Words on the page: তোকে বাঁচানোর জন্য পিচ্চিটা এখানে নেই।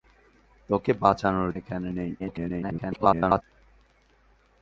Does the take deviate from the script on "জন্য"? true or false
true